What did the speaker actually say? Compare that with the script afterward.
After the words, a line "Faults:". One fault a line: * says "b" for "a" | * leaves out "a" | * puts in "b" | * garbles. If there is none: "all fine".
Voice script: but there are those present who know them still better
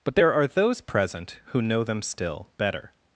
but there are those present who know them still better
Faults:
all fine